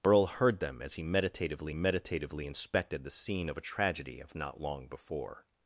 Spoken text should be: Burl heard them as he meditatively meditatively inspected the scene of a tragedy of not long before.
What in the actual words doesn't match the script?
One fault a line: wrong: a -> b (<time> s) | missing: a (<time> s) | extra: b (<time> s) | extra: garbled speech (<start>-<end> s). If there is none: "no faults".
no faults